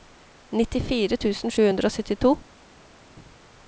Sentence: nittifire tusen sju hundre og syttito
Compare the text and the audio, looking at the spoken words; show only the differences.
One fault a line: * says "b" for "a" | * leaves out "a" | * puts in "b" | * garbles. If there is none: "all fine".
all fine